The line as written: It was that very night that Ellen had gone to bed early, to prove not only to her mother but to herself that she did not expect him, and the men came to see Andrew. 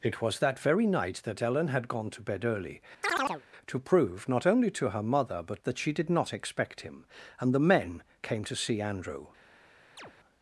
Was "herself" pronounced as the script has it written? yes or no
no